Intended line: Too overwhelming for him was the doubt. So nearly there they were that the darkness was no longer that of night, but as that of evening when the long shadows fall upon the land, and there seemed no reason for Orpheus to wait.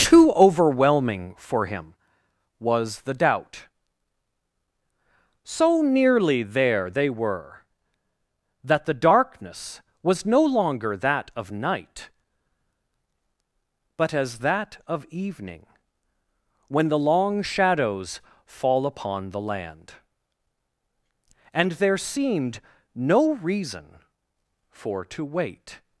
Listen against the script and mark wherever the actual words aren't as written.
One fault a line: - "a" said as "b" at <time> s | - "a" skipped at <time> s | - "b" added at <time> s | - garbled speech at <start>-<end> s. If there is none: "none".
- "Orpheus" skipped at 25.1 s